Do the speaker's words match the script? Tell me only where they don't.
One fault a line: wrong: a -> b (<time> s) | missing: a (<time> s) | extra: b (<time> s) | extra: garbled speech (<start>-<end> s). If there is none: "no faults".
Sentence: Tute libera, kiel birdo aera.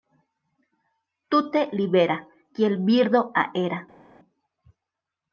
no faults